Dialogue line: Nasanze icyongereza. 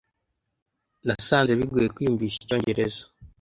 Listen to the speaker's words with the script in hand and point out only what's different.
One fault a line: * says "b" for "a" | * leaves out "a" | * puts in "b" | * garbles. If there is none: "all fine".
* puts in "bigoye kwiyumvisha"